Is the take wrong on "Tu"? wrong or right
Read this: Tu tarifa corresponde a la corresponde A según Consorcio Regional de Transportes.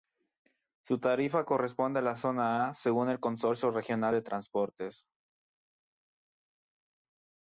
wrong